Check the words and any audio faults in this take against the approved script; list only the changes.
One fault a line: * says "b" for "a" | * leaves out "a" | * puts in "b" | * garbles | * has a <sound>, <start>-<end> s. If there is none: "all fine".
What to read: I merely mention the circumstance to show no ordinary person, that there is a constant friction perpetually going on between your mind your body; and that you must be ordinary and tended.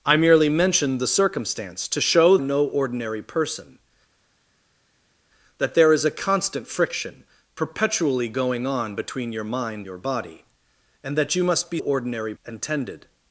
all fine